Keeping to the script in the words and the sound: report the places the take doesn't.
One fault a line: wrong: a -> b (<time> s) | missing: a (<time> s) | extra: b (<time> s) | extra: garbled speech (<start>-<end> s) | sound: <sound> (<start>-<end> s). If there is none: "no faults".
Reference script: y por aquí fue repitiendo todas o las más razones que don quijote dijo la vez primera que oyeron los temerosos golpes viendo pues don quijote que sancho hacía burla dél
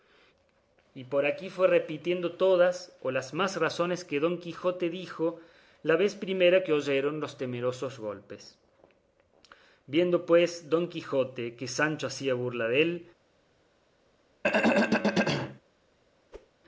sound: throat clearing (14.4-15.6 s)
sound: whoosh (16.3-16.5 s)